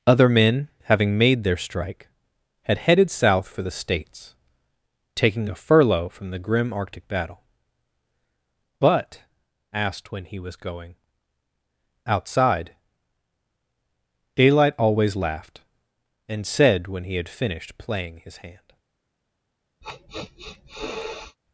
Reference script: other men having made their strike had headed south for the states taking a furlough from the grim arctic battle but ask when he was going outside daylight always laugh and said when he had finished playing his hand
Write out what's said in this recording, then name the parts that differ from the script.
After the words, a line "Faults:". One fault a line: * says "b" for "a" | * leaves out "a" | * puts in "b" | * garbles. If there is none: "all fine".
other men having made their strike had headed south for the states taking a furlough from the grim arctic battle but asked when he was going outside daylight always laughed and said when he had finished playing his hand
Faults:
* says "asked" for "ask"
* says "laughed" for "laugh"